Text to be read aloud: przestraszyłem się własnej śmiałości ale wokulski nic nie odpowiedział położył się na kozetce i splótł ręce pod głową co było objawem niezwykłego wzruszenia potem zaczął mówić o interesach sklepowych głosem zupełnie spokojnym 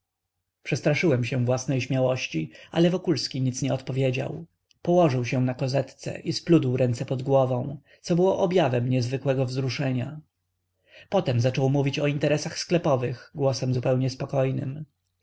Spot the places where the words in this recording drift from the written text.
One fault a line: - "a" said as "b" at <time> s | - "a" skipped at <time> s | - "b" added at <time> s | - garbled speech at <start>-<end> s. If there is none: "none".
none